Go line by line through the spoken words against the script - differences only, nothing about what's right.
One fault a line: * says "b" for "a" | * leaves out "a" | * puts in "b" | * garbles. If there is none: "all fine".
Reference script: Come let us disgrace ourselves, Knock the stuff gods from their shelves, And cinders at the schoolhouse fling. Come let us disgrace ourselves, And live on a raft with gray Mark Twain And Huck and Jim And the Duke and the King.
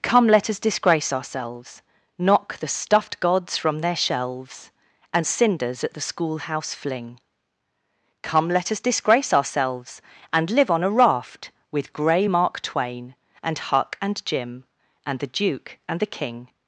* says "stuffed" for "stuff"